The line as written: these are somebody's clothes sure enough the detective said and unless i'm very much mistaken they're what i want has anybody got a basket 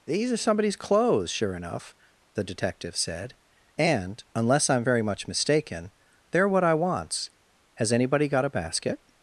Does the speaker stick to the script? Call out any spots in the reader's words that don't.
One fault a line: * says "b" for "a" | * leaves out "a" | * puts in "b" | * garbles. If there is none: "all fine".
* says "wants" for "want"